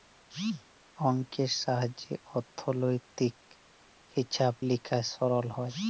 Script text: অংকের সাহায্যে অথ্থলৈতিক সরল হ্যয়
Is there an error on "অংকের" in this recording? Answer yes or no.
no